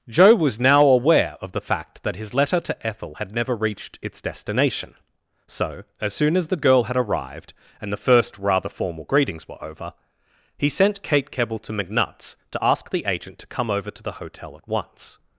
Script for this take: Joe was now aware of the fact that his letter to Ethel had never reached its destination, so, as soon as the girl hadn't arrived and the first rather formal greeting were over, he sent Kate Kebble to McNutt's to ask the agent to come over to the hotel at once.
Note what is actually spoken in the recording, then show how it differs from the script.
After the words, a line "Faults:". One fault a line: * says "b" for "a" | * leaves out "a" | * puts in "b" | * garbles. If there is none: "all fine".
Joe was now aware of the fact that his letter to Ethel had never reached its destination, so, as soon as the girl had arrived and the first rather formal greetings were over, he sent Kate Kebble to McNutt's to ask the agent to come over to the hotel at once.
Faults:
* says "had" for "hadn't"
* says "greetings" for "greeting"